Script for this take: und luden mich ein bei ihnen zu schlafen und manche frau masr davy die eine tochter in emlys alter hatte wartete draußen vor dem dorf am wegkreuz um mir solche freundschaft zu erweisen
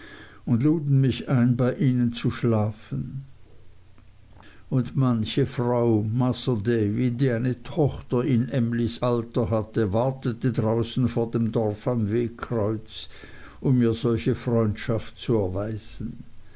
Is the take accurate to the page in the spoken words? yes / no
yes